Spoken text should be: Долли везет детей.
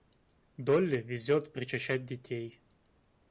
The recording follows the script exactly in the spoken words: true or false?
false